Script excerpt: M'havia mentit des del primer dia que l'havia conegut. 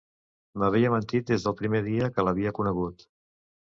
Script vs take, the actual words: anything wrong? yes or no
no